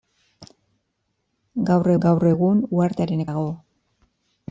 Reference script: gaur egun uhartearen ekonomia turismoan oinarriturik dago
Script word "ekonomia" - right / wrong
wrong